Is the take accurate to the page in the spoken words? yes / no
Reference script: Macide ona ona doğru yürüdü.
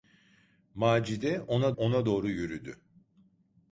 yes